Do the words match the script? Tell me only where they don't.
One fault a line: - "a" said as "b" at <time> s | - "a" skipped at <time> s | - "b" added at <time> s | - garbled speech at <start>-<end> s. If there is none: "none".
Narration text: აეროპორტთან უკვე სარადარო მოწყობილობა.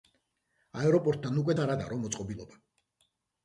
none